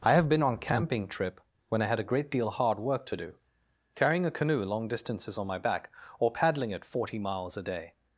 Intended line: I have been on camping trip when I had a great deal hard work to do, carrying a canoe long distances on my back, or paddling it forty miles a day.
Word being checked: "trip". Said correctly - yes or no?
yes